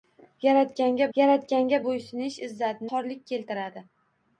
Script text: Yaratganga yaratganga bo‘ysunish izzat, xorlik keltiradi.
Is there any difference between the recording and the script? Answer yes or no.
no